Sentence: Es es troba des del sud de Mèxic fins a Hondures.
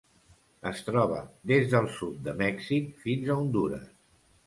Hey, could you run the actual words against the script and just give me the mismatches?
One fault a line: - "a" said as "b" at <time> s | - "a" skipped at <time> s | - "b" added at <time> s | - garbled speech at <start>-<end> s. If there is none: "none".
- "es" skipped at 0.8 s